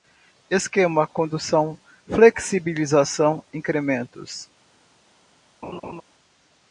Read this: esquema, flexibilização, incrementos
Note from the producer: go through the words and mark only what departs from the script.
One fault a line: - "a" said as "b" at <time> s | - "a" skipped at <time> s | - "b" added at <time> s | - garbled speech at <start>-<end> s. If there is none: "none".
- "condução" added at 1.1 s